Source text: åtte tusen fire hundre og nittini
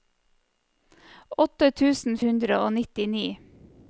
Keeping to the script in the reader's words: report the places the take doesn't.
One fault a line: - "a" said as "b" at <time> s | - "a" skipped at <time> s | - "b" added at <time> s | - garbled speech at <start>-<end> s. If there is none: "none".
- "fire" skipped at 2.2 s